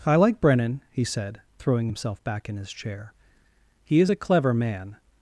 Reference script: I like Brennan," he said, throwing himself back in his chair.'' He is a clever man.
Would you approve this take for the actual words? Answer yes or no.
yes